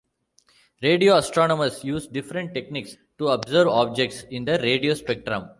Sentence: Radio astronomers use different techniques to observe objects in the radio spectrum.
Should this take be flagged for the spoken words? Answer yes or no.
no